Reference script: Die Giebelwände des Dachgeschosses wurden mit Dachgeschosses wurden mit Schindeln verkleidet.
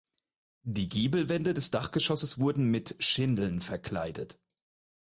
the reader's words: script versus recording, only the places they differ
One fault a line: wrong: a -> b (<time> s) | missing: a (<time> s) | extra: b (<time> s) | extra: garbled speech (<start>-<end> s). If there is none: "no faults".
missing: Dachgeschosses wurden mit (3.0 s)